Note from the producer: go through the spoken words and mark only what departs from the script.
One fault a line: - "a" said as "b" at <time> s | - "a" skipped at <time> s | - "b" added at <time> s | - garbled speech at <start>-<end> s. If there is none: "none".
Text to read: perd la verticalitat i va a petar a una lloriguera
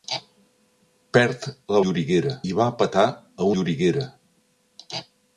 - "verticalitat" said as "lloriguera" at 1.8 s
- "una" skipped at 3.5 s